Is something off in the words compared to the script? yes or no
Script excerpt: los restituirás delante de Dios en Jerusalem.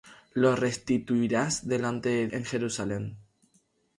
yes